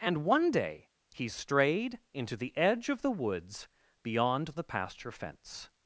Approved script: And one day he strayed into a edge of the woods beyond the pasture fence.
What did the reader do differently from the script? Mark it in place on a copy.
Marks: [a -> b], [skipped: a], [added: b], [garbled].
And one day he strayed into [a -> the] edge of the woods beyond the pasture fence.